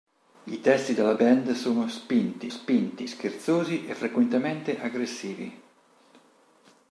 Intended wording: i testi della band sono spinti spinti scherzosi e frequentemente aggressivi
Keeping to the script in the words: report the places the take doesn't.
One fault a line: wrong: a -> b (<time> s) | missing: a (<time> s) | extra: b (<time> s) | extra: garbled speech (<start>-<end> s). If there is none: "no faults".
no faults